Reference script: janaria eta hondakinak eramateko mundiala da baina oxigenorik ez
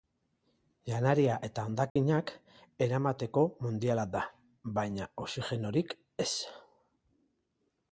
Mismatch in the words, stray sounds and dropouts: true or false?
true